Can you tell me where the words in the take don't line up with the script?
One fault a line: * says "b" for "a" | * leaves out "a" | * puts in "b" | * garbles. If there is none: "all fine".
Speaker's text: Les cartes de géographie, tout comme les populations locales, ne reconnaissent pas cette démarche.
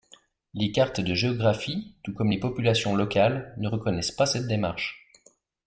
all fine